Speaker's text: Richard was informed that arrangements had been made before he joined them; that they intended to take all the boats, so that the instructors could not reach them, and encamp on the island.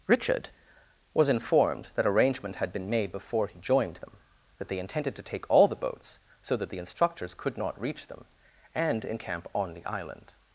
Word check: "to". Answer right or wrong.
right